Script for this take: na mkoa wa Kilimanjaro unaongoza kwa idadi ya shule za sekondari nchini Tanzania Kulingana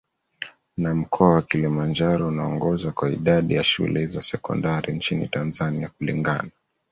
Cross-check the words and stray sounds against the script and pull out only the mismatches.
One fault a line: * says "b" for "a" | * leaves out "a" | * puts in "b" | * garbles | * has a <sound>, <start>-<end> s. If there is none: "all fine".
all fine